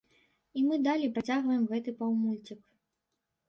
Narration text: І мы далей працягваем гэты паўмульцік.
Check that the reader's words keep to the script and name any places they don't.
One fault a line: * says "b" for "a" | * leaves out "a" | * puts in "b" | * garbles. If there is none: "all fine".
all fine